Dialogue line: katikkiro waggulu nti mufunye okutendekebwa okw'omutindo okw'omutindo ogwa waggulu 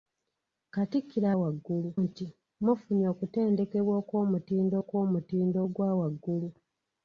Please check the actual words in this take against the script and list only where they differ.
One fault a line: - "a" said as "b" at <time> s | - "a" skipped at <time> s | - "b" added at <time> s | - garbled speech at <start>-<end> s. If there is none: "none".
none